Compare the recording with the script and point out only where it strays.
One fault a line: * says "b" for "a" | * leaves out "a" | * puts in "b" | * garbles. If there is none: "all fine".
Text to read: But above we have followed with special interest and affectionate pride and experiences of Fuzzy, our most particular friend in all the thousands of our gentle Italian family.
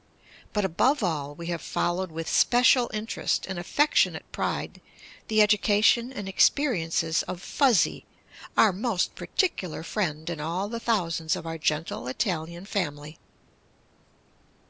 * puts in "all"
* puts in "the education"